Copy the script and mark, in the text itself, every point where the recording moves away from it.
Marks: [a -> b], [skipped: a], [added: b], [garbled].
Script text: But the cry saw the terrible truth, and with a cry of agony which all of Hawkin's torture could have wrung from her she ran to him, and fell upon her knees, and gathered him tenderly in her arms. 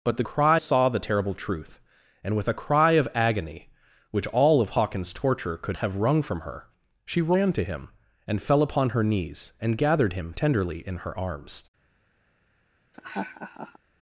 But the cry saw the terrible truth, and with a cry of agony which all of Hawkin's torture could have wrung from her she ran to him, and fell upon her knees, and gathered him tenderly in her arms.